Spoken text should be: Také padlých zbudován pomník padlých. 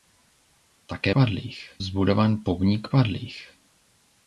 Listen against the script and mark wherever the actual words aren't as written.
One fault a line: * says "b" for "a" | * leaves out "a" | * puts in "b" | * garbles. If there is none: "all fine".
all fine